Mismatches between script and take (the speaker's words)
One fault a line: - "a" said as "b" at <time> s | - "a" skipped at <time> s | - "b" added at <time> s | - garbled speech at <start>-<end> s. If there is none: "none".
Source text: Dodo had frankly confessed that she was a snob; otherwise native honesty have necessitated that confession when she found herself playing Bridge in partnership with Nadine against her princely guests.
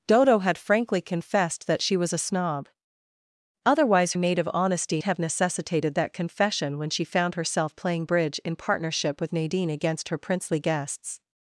none